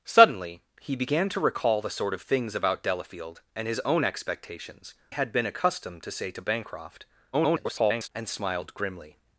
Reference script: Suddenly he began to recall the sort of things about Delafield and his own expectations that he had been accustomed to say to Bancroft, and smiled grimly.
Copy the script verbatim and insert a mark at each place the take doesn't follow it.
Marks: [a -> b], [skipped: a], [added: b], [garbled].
Suddenly he began to recall the sort of things about Delafield and his own expectations [skipped: that he] had been accustomed to say to Bancroft, [garbled] and smiled grimly.